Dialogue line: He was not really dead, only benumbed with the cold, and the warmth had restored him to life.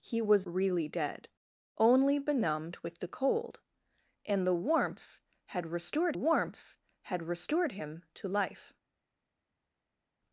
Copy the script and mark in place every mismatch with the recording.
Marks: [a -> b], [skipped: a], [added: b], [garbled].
He was [skipped: not] really dead, only benumbed with the cold, and the warmth had restored [added: warmth had restored] him to life.